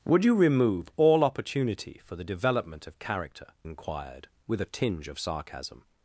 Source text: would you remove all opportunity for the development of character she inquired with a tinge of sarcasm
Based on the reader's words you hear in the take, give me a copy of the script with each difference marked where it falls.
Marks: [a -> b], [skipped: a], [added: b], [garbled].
would you remove all opportunity for the development of character [skipped: she] inquired with a tinge of sarcasm